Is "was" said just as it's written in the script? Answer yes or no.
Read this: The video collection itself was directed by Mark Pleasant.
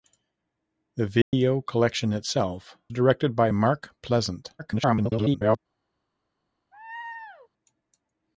no